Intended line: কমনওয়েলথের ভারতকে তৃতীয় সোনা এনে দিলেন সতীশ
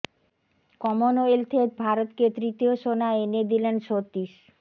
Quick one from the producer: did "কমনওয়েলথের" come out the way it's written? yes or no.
yes